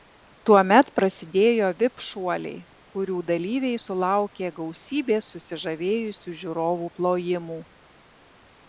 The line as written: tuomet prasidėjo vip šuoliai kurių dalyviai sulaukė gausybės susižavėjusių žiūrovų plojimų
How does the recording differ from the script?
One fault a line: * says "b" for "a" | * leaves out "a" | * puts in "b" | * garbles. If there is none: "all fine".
all fine